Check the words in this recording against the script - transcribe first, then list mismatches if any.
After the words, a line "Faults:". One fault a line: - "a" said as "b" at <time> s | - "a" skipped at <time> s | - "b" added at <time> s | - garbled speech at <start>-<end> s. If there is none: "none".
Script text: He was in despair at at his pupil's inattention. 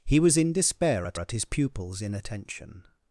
He was in despair at at his pupil's inattention.
Faults:
none